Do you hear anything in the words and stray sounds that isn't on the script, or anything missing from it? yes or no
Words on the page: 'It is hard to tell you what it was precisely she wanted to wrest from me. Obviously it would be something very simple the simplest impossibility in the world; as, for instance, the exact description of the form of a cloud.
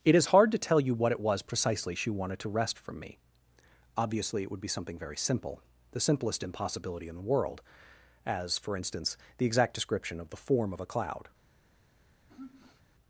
yes